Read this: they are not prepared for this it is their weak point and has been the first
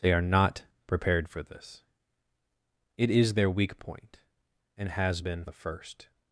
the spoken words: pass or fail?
pass